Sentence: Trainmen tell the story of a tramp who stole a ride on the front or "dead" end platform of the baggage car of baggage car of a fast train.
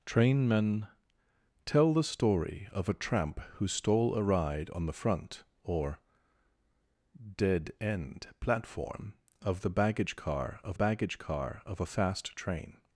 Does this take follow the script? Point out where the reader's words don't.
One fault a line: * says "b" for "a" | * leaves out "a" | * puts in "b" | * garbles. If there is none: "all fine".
all fine